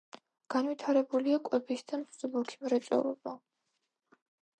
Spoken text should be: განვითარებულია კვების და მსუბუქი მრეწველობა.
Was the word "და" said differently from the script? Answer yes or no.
no